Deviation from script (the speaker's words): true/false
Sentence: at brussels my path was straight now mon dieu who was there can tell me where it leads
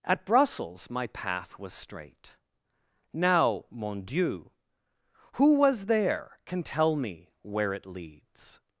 false